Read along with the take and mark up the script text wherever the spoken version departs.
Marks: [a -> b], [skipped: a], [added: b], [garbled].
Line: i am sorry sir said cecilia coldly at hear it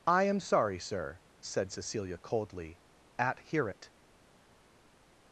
i am sorry sir said cecilia coldly at hear it